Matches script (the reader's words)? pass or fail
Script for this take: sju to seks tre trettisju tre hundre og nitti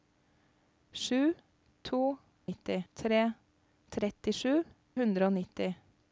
fail